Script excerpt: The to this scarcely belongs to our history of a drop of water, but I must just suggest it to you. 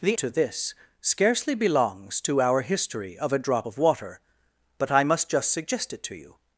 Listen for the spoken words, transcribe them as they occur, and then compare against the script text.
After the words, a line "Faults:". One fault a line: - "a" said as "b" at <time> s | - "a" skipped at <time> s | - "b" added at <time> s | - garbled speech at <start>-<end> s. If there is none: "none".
The to this scarcely belongs to our history of a drop of water, but I must just suggest it to you.
Faults:
none